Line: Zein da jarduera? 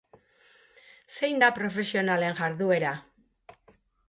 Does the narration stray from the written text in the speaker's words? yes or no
yes